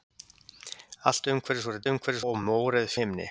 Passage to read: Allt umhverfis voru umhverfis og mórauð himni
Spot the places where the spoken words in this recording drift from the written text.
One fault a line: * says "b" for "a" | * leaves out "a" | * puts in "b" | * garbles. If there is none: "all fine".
all fine